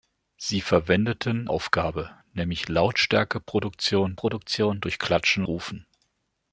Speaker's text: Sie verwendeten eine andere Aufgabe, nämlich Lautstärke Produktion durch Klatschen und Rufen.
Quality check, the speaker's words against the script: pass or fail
fail